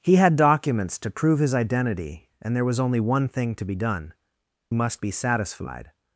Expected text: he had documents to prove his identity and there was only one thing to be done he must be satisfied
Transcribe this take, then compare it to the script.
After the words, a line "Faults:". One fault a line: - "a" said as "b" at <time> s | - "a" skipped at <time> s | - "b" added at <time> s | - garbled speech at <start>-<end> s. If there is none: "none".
he had documents to prove his identity and there was only one thing to be done must be satisfied
Faults:
- "he" skipped at 4.2 s